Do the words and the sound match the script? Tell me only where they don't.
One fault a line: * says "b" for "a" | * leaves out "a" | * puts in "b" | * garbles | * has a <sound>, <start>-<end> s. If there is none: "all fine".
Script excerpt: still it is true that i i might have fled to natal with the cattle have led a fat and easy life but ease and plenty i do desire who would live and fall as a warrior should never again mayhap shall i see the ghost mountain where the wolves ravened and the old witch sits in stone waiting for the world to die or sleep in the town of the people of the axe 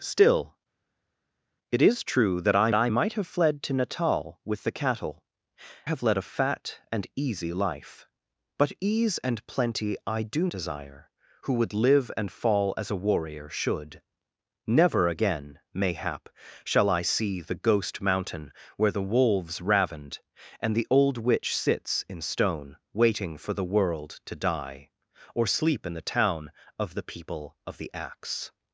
all fine